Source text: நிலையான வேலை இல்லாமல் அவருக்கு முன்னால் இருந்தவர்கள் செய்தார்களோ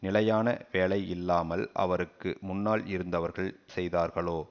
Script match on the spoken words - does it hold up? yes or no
yes